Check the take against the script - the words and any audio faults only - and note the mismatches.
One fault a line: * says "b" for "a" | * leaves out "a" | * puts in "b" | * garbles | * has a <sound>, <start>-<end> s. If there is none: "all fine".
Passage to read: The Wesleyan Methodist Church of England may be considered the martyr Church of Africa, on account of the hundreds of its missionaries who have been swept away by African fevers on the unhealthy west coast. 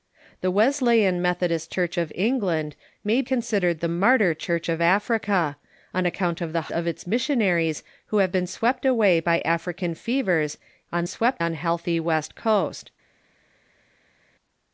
* leaves out "be"
* leaves out "hundreds"
* says "swept" for "the"